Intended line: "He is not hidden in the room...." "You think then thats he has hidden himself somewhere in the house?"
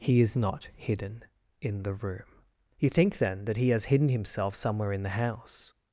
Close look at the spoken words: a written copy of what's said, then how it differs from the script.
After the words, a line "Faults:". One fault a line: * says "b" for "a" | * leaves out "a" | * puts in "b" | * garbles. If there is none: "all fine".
"He is not hidden in the room...." "You think then that he has hidden himself somewhere in the house?"
Faults:
* says "that" for "thats"